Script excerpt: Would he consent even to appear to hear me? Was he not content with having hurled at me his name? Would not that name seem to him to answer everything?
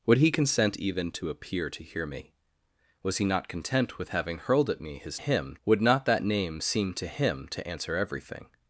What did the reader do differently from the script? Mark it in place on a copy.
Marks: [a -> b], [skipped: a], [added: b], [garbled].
Would he consent even to appear to hear me? Was he not content with having hurled at me his [name? -> him] Would not that name seem to him to answer everything?